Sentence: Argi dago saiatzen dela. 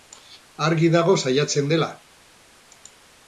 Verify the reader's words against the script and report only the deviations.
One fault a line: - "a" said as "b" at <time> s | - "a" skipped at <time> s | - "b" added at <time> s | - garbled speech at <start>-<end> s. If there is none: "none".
none